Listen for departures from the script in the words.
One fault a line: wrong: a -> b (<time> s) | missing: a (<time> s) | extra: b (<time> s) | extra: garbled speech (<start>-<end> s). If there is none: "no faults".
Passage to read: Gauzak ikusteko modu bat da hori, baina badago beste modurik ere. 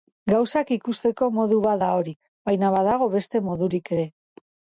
no faults